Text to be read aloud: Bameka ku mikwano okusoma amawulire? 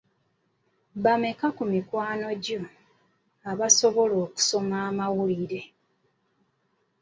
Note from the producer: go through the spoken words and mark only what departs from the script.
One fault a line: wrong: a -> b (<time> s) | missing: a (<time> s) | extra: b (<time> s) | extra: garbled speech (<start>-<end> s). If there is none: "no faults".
extra: gyo abasobola (2.4 s)